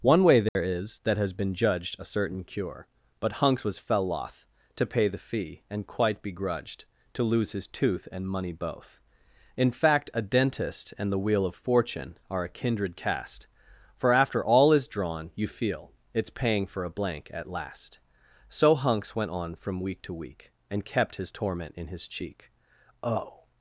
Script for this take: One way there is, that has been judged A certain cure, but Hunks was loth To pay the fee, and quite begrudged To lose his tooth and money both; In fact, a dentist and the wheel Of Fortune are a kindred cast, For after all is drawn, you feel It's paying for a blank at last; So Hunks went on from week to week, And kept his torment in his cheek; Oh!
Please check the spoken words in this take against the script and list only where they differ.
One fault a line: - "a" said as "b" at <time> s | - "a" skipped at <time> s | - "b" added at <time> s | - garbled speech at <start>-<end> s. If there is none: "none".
- "fell" added at 3.8 s